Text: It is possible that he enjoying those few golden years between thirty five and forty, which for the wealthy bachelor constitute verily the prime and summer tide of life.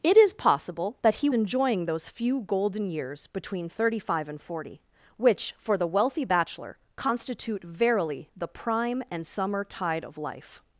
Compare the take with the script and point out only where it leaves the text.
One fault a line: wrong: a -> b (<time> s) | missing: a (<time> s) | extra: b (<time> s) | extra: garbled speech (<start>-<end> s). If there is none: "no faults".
no faults